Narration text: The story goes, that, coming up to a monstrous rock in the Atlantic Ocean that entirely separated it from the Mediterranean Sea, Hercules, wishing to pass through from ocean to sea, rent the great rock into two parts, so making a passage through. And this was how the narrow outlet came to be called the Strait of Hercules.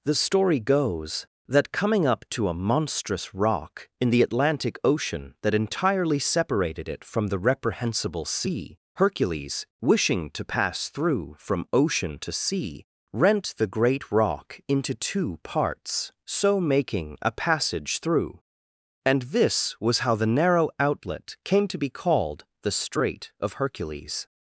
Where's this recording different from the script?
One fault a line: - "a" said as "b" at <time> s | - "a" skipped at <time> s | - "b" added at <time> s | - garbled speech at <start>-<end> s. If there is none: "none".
- "Mediterranean" said as "Reprehensible" at 7.4 s